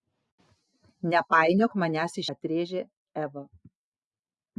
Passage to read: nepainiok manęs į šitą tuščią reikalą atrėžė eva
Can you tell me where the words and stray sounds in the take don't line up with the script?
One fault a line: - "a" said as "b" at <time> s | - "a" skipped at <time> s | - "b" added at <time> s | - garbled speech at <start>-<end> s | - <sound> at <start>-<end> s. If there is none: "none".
- "šitą tuščią reikalą" skipped at 2.2 s